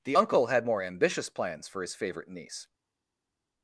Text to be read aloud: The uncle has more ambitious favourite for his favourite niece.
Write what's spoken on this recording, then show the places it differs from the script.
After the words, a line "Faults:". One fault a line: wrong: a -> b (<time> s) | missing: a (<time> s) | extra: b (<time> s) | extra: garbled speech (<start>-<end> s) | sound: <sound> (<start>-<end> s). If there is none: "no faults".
The uncle had more ambitious plans for his favourite niece.
Faults:
wrong: has -> had (0.5 s)
wrong: favourite -> plans (1.3 s)